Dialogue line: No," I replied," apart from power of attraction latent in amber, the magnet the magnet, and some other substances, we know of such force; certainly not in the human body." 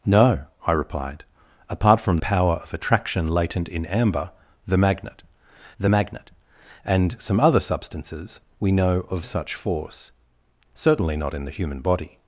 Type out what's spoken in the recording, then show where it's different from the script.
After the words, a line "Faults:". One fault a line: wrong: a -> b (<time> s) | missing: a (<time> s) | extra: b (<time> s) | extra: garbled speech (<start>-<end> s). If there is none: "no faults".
No," I replied," apart from power of attraction latent in amber, the magnet the magnet, and some other substances, we know of such force; certainly not in the human body."
Faults:
no faults